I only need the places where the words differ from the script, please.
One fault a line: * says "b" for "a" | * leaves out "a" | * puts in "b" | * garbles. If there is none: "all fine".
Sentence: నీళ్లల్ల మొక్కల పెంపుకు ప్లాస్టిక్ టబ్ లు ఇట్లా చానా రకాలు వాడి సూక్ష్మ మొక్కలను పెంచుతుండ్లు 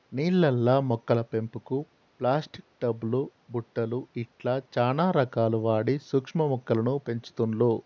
* puts in "బుట్టలు"